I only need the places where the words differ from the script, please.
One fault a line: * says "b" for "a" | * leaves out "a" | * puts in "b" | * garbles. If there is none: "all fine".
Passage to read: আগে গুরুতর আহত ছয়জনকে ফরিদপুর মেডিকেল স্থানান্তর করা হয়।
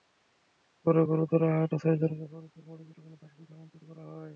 * says "পরে" for "আগে"
* puts in "কলেজ হাসপাতালে"